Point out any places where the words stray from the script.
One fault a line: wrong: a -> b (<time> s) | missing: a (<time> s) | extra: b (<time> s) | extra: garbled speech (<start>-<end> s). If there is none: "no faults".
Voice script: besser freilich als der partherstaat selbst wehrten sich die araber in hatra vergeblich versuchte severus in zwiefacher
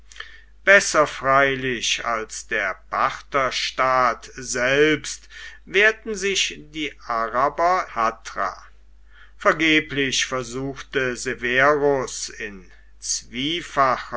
missing: in (7.8 s)